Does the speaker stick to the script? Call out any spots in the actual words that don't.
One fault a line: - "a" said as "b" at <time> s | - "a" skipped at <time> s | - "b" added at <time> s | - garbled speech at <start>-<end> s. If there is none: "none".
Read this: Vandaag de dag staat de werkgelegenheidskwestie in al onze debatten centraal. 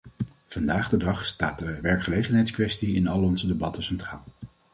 none